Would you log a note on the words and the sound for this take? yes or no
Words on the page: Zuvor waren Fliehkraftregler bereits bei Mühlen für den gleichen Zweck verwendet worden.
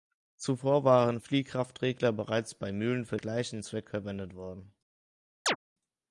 yes